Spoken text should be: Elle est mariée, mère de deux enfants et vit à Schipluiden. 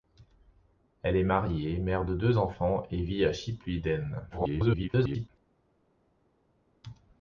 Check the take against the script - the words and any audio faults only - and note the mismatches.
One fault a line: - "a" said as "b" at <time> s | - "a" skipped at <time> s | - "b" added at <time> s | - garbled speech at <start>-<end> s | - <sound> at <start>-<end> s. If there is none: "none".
- garbled speech at 4.3-5.3 s